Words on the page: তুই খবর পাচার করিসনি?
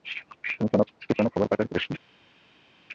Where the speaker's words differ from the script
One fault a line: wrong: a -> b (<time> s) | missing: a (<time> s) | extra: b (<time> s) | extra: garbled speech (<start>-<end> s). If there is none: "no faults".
extra: কোনো (1.2 s)